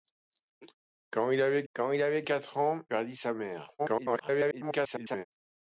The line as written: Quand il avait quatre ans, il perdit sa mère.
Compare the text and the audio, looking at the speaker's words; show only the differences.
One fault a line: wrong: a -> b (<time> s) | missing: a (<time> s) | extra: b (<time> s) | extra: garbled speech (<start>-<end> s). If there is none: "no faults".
extra: quand il avait (1.7 s)
missing: il (2.8 s)
extra: garbled speech (3.8-5.3 s)